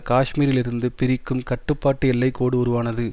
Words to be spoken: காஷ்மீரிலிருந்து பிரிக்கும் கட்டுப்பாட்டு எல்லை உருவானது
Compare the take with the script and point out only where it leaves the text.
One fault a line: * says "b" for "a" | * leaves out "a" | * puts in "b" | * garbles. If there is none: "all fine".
* puts in "கோடு"